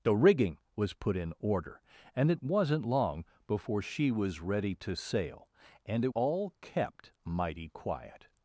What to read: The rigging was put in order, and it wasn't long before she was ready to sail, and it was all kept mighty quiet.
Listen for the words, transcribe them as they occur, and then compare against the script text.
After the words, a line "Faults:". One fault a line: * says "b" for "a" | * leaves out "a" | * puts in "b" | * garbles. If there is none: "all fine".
The rigging was put in order, and it wasn't long before she was ready to sail, and it all kept mighty quiet.
Faults:
* leaves out "was"